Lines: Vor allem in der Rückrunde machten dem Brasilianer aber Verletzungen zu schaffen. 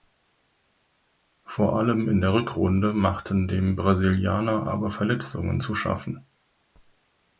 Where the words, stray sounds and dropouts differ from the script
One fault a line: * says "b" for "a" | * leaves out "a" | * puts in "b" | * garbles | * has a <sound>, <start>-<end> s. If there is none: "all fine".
all fine